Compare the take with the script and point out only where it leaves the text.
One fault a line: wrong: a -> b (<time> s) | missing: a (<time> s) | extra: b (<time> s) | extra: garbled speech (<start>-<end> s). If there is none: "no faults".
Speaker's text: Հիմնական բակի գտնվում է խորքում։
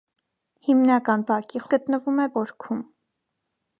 no faults